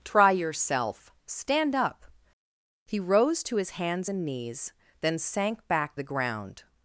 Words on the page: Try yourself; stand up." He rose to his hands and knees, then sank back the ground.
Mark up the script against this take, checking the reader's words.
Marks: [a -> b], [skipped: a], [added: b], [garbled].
Try yourself; stand up." He rose to his hands and knees, then sank back the ground.